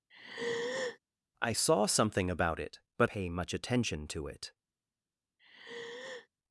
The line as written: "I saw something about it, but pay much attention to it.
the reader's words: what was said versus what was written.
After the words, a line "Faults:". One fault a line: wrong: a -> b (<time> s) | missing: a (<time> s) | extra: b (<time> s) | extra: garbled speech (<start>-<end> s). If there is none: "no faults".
"I saw something about it, but pay much attention to it.
Faults:
no faults